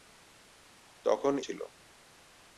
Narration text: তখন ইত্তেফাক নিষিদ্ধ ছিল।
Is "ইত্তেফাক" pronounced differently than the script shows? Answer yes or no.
yes